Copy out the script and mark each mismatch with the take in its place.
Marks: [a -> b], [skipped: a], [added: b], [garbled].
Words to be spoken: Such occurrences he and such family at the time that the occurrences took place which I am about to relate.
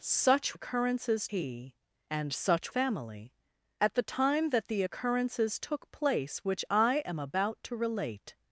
Such occurrences he and such family at the time that the occurrences took place which I am about to relate.